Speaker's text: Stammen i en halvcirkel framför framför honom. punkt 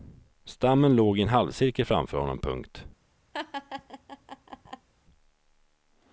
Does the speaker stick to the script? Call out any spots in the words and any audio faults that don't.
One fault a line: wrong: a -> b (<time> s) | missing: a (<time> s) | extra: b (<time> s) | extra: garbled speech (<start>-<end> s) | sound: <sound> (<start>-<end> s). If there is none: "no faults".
extra: låg (0.9 s)
missing: framför (2.2 s)
sound: laugh (3.3-4.9 s)